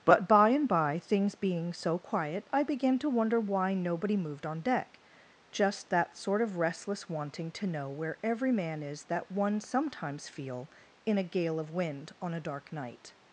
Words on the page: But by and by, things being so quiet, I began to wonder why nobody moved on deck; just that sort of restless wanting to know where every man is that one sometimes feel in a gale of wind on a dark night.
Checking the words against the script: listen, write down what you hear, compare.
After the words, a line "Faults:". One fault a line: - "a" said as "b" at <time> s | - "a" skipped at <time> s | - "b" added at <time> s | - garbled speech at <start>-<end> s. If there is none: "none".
But by and by, things being so quiet, I began to wonder why nobody moved on deck; just that sort of restless wanting to know where every man is that one sometimes feel in a gale of wind on a dark night.
Faults:
none